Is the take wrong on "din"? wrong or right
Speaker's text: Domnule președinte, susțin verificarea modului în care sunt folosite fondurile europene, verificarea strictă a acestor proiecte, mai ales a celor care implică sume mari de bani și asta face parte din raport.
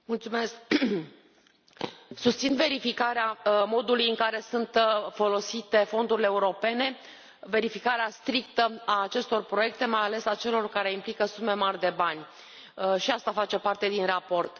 right